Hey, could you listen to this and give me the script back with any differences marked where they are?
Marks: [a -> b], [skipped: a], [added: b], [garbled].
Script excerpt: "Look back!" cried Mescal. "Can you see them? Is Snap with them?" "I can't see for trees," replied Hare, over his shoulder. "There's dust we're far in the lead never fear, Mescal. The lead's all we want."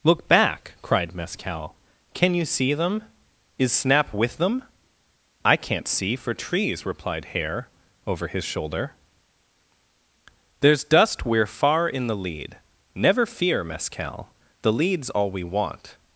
"Look back!" cried Mescal. "Can you see them? Is Snap with them?" "I can't see for trees," replied Hare, over his shoulder. "There's dust we're far in the lead never fear, Mescal. The lead's all we want."